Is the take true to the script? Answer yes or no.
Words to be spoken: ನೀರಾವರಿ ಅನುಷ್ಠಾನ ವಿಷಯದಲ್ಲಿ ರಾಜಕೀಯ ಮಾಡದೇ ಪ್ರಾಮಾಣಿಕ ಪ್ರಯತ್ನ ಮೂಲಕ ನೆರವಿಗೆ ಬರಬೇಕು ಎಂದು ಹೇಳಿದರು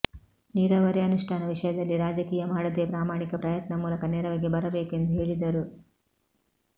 yes